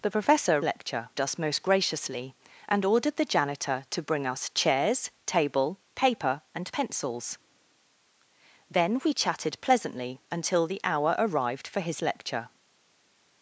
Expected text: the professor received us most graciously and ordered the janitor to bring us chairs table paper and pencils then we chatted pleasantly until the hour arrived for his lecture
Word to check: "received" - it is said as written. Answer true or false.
false